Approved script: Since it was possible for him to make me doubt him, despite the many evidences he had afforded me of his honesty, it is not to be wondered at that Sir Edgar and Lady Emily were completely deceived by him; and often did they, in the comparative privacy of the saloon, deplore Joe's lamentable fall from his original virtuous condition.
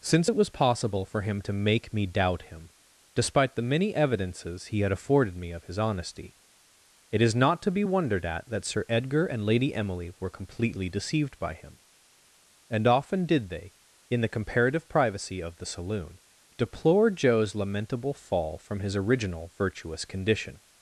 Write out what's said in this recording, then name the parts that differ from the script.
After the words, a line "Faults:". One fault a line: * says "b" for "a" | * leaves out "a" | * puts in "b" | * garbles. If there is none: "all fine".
Since it was possible for him to make me doubt him, despite the many evidences he had afforded me of his honesty, it is not to be wondered at that Sir Edgar and Lady Emily were completely deceived by him; and often did they, in the comparative privacy of the saloon, deplore Joe's lamentable fall from his original virtuous condition.
Faults:
all fine